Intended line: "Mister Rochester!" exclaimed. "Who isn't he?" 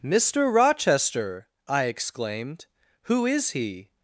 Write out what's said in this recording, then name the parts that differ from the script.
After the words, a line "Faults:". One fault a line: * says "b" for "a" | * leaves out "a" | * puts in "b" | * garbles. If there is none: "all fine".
"Mister Rochester!" I exclaimed. "Who is he?"
Faults:
* puts in "I"
* says "is" for "isn't"